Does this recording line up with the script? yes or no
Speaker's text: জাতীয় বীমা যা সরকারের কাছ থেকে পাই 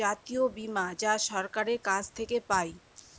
yes